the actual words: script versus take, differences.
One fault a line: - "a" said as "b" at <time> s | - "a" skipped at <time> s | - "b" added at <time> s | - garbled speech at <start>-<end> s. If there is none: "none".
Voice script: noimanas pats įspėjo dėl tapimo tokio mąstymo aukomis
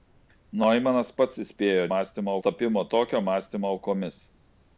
- "dėl" said as "mąstymo" at 1.9 s